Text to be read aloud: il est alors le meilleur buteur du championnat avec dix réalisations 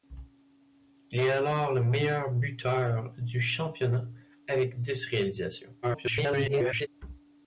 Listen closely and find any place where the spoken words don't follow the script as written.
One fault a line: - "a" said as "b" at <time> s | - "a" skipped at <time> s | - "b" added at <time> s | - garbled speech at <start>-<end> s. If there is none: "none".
- garbled speech at 5.8-6.9 s